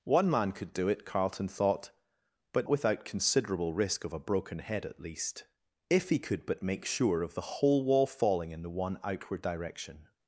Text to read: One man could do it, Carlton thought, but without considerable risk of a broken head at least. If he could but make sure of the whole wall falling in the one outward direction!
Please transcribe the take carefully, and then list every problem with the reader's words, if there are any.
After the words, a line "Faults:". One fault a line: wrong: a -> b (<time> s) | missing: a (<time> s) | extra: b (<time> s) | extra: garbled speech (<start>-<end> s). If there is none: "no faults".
One man could do it, Carlton thought, but without considerable risk of a broken head at least. If he could but make sure of the whole wall falling in the one outward direction!
Faults:
no faults